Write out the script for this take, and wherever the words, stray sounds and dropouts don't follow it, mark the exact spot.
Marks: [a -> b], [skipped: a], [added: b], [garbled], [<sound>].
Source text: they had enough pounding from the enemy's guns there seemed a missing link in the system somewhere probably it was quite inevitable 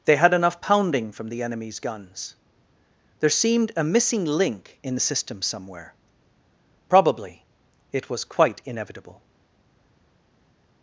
they had enough pounding from the enemy's guns there seemed a missing link in the system somewhere probably it was quite inevitable